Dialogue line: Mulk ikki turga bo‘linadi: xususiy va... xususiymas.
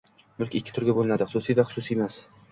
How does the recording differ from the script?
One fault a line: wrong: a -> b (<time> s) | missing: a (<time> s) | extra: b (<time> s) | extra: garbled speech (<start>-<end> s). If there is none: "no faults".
no faults